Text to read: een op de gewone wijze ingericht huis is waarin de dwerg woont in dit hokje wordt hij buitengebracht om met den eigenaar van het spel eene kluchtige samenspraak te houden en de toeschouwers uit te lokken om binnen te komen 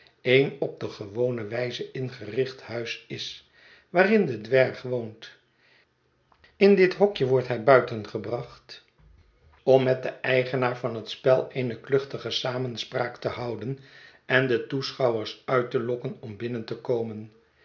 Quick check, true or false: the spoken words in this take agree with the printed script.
true